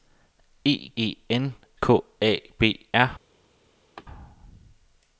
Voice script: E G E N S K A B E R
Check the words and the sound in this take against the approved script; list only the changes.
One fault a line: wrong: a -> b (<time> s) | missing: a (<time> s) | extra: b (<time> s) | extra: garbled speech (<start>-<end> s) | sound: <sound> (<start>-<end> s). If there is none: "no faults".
missing: G (0.9 s)
missing: S (1.5 s)
missing: E (2.9 s)
sound: laugh (4.0-4.0 s)